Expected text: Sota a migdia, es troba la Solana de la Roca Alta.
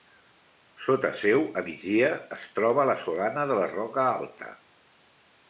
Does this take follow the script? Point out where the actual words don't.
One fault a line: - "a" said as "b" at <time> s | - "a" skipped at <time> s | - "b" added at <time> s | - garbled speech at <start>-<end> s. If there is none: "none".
- "seu" added at 1.2 s